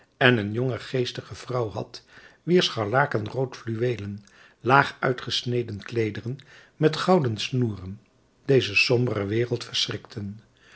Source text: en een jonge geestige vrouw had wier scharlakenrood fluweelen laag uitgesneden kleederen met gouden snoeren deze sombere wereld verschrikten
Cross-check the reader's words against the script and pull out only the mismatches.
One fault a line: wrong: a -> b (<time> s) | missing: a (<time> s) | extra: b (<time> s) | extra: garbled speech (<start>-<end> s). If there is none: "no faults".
no faults